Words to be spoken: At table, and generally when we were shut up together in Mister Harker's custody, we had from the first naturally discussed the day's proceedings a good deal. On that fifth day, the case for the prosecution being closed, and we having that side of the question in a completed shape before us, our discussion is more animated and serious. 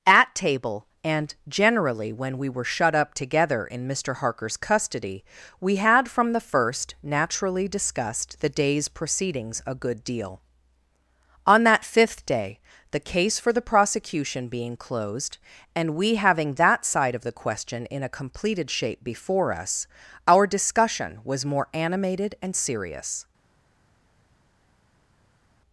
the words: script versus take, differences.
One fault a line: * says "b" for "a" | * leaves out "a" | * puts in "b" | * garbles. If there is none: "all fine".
* says "was" for "is"